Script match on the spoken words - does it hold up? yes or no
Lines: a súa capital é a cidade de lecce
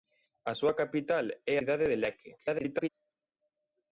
no